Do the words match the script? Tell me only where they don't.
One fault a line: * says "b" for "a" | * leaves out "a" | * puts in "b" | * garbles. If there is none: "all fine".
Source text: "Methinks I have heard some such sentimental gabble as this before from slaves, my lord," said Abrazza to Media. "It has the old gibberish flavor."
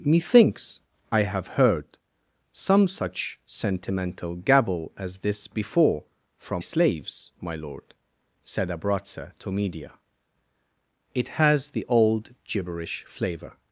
all fine